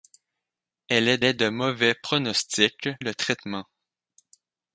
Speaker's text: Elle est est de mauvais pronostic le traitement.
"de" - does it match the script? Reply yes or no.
yes